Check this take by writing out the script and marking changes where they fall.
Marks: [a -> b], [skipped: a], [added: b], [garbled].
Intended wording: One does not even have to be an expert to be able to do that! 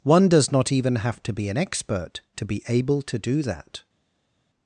One does not even have to be an expert to be able to do that!